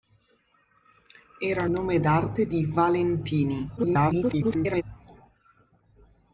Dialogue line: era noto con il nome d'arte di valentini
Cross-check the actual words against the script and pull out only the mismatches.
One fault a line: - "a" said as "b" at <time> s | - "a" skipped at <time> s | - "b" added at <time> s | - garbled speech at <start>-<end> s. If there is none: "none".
- "noto con il" skipped at 1.7 s
- garbled speech at 3.8-4.8 s